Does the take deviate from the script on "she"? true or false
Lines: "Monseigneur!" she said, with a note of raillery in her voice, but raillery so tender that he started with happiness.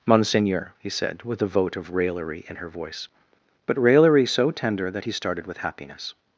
true